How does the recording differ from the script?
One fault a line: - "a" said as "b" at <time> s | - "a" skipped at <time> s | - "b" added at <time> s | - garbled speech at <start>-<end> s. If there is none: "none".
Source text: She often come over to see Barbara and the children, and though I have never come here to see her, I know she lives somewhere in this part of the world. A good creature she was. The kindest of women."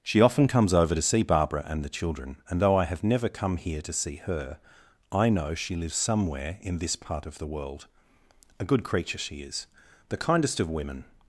- "come" said as "comes" at 0.5 s
- "was" said as "is" at 9.4 s